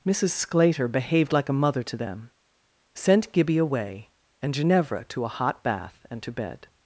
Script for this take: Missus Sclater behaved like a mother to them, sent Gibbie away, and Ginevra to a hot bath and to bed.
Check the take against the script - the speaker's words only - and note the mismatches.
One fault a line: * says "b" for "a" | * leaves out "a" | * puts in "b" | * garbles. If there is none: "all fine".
all fine